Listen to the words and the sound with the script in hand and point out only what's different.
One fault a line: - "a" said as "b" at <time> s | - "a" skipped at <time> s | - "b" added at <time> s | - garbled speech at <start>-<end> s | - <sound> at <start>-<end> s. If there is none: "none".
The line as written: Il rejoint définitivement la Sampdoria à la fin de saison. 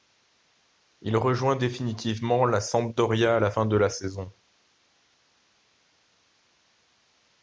- "la" added at 3.7 s